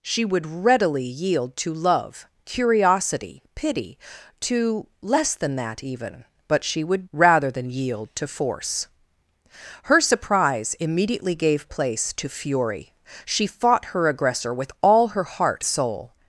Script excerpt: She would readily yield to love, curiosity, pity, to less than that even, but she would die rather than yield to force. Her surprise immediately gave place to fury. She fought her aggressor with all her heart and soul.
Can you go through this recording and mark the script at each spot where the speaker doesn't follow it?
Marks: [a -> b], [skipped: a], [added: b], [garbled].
She would readily yield to love, curiosity, pity, to less than that even, but she would [skipped: die] rather than yield to force. Her surprise immediately gave place to fury. She fought her aggressor with all her heart [skipped: and] soul.